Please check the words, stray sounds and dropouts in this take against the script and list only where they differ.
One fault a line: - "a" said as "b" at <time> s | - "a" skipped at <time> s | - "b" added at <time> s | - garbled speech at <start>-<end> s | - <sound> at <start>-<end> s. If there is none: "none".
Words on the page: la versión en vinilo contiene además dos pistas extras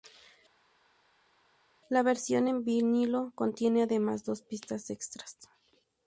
none